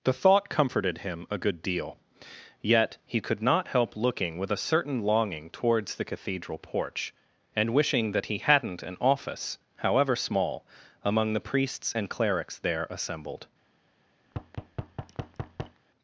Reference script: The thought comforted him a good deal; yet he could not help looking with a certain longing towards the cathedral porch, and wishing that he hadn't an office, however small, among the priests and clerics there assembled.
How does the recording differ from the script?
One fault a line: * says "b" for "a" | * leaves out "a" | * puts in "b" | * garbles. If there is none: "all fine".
all fine